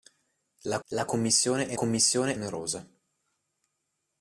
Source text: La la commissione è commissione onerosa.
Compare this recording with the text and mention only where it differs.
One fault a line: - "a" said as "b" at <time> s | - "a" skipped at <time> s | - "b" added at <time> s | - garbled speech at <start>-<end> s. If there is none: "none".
none